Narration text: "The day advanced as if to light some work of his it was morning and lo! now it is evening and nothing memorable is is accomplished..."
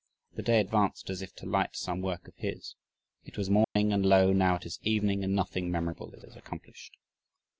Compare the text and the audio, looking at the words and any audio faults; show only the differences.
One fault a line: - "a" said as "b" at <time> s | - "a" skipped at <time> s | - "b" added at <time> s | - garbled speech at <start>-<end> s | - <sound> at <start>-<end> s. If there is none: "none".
- dropout at 3.6-3.8 s